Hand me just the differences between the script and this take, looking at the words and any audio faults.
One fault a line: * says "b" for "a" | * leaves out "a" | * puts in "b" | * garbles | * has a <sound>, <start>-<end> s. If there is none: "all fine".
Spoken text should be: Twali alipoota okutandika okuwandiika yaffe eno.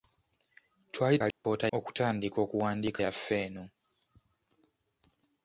* has a dropout, 1.3-1.4 s